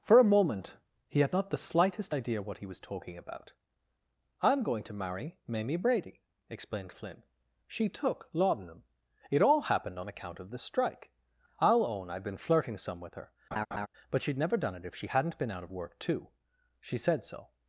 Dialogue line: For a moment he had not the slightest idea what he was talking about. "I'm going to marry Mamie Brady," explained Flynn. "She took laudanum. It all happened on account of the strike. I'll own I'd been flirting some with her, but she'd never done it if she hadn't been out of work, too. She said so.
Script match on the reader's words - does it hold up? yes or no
yes